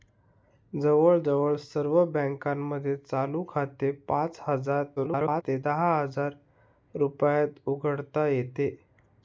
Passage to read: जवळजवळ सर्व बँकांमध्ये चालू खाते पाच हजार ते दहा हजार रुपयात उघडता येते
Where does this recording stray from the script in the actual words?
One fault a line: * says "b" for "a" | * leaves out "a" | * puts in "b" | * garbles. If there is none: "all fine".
* garbles